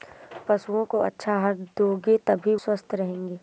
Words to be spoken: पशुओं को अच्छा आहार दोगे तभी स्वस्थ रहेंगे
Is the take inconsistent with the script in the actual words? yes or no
no